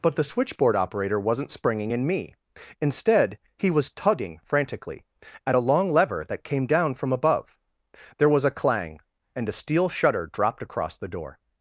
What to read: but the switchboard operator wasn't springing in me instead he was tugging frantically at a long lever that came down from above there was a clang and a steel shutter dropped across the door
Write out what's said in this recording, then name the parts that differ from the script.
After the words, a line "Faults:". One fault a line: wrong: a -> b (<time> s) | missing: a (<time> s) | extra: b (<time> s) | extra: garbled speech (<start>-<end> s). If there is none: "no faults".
but the switchboard operator wasn't springing in me instead he was tugging frantically at a long lever that came down from above there was a clang and a steel shutter dropped across the door
Faults:
no faults